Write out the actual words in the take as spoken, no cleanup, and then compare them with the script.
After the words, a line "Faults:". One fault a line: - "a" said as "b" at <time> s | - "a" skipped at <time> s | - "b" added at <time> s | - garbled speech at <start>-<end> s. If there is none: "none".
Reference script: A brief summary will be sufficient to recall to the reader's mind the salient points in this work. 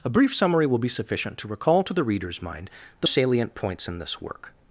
A brief summary will be sufficient to recall to the reader's mind the salient points in this work.
Faults:
none